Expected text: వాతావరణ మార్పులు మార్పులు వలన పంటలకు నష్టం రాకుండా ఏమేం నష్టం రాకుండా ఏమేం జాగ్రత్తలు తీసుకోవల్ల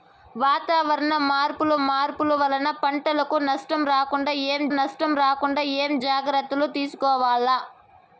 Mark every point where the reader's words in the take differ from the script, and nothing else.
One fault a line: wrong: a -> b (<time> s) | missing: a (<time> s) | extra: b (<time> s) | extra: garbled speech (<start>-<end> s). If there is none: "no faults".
no faults